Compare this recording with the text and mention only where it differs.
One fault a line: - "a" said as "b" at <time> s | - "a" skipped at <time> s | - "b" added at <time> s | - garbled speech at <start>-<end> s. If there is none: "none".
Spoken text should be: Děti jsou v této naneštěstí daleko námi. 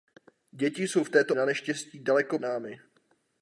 none